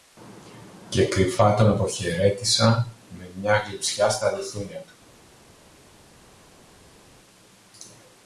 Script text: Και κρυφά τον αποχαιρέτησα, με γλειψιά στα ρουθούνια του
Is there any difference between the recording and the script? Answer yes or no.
yes